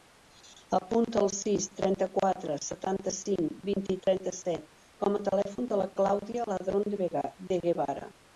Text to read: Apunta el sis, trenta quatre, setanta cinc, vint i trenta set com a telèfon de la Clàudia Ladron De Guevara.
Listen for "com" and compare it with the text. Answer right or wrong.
right